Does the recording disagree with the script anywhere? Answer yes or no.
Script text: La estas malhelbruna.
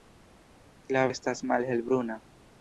no